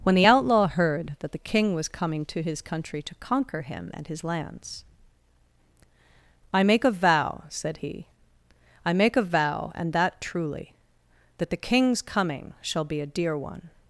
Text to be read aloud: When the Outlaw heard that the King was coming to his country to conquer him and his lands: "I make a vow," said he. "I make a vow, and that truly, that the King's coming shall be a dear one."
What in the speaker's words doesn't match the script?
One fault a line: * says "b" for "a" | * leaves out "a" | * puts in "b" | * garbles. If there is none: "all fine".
all fine